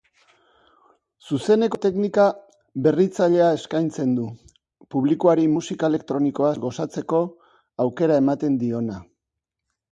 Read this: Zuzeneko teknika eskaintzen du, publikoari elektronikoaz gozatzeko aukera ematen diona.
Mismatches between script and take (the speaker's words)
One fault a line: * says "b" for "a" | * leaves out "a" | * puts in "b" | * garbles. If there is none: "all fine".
* puts in "berritzailea"
* puts in "musika"